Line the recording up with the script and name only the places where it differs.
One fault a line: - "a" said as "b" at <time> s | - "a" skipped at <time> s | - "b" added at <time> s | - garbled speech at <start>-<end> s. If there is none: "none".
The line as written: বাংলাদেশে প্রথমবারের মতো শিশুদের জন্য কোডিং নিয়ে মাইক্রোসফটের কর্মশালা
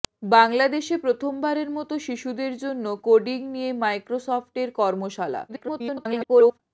- garbled speech at 5.5-6.6 s